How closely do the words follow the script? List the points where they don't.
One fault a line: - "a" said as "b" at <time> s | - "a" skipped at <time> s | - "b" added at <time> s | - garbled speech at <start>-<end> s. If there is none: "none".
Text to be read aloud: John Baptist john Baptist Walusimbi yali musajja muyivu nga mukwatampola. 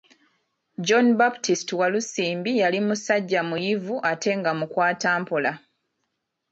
- "john Baptist" skipped at 1.7 s
- "ate" added at 4.1 s